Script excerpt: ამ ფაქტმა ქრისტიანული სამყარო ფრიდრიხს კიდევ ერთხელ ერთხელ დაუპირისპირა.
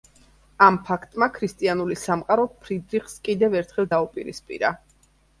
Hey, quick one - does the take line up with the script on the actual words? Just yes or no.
no